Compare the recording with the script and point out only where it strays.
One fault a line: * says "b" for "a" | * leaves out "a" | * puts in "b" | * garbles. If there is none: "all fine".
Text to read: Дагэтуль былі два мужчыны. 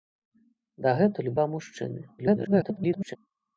* leaves out "былі"
* garbles